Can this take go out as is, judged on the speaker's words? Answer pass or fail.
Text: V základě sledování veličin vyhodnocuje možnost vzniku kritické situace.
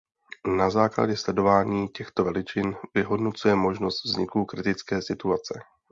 fail